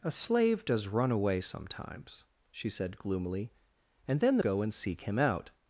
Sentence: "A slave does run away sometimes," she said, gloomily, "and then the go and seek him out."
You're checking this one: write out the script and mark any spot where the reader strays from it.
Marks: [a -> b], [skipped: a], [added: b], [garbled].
"A slave does run away sometimes," she said, gloomily, "and then the go and seek him out."